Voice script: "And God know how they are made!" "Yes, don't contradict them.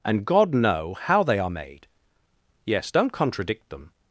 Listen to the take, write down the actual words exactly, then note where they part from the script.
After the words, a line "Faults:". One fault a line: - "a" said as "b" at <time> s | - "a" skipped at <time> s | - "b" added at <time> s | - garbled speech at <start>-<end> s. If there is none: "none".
"And God know how they are made!" "Yes, don't contradict them.
Faults:
none